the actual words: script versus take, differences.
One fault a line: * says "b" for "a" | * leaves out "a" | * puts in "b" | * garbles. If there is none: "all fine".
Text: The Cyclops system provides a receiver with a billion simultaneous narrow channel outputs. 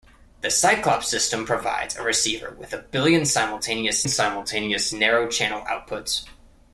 * puts in "simultaneous"